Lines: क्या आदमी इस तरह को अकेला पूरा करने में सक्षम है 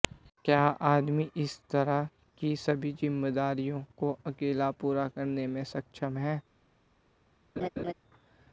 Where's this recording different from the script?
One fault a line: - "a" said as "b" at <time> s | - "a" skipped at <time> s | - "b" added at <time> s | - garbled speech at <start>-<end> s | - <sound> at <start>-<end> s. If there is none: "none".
- "की सभी जिम्मेदारियों" added at 2.4 s
- laugh at 7.6-7.9 s